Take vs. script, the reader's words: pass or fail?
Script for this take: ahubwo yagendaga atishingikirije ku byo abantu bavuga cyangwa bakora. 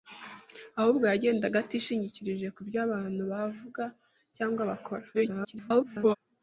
fail